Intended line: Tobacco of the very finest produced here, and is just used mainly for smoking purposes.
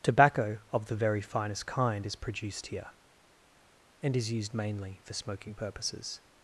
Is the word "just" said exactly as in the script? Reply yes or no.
no